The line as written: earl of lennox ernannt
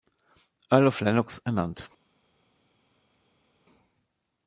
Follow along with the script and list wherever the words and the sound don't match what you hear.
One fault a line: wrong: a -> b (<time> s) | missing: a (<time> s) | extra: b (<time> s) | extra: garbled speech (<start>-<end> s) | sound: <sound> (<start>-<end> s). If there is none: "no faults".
no faults